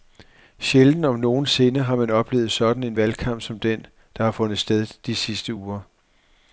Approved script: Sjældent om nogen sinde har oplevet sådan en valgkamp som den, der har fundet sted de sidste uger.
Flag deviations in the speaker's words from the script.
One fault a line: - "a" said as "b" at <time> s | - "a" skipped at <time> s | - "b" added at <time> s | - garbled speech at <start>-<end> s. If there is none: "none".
- "man" added at 1.9 s